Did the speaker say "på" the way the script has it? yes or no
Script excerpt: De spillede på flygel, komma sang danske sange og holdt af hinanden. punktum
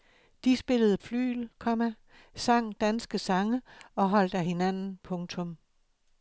no